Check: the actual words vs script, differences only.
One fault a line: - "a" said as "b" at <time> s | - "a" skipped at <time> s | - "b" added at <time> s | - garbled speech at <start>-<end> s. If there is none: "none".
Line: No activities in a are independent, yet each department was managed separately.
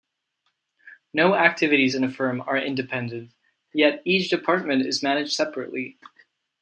- "firm" added at 2.1 s
- "was" said as "is" at 4.9 s